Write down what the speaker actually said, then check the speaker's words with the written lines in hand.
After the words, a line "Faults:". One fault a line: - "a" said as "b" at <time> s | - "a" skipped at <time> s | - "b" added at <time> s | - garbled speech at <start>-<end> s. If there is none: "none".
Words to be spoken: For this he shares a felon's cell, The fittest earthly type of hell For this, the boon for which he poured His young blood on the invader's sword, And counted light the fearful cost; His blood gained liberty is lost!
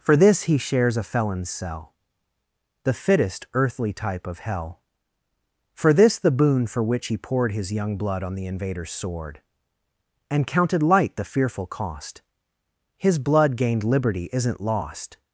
For this he shares a felon's cell, The fittest earthly type of hell For this, the boon for which he poured His young blood on the invader's sword, And counted light the fearful cost; His blood gained liberty isn't lost!
Faults:
- "is" said as "isn't" at 14.3 s